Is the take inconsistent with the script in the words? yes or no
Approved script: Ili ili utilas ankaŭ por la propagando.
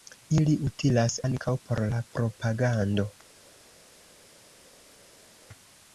yes